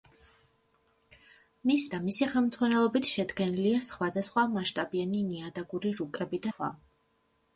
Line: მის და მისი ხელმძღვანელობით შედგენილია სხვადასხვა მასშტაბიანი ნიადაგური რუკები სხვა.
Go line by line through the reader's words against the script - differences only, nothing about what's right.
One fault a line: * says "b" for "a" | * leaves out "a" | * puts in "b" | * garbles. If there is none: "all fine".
all fine